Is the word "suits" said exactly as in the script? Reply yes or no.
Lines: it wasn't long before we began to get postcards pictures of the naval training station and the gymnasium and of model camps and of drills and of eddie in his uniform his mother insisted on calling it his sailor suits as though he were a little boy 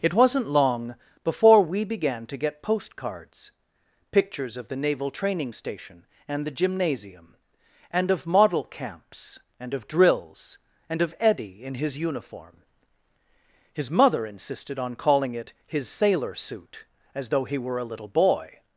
no